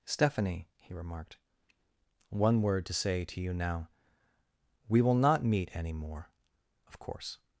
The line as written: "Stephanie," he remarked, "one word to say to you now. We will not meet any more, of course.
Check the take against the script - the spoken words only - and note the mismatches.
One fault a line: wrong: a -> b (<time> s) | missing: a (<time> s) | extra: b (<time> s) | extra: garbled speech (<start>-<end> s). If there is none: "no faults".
no faults